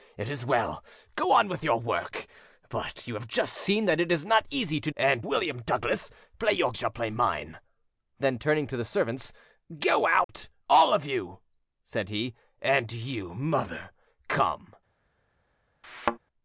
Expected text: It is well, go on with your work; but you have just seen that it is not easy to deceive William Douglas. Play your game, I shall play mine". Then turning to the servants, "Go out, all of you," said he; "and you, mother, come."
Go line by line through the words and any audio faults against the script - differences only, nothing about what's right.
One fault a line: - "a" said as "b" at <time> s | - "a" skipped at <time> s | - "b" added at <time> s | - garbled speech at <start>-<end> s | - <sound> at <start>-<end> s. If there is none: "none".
- "deceive" said as "and" at 5.0 s
- "game I" skipped at 6.7 s
- dropout at 10.2-10.3 s
- thud at 15.8-16.2 s